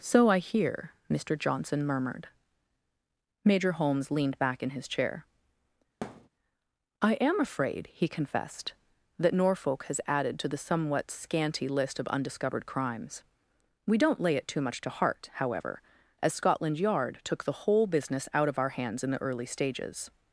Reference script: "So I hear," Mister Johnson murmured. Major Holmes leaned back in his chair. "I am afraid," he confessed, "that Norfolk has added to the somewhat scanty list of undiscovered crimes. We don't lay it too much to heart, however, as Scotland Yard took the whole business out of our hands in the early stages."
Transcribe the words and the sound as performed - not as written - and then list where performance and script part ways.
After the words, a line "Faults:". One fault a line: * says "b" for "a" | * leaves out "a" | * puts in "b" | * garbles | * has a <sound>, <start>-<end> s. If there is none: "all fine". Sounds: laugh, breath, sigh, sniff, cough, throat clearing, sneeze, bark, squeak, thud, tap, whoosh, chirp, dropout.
"So I hear," Mister Johnson murmured. Major Holmes leaned back in his chair. "I am afraid," he confessed, "that Norfolk has added to the somewhat scanty list of undiscovered crimes. We don't lay it too much to heart, however, as Scotland Yard took the whole business out of our hands in the early stages."
Faults:
* has a thud, 6.0-6.3 s